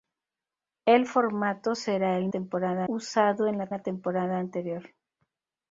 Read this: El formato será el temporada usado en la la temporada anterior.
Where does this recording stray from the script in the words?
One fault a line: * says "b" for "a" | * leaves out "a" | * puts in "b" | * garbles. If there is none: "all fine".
all fine